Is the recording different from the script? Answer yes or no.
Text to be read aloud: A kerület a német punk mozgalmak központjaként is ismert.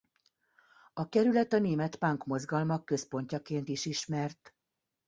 no